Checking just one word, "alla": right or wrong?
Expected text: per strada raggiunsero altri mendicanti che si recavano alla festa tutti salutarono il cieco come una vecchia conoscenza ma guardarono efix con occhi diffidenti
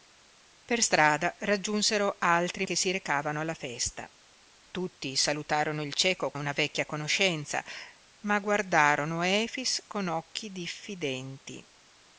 right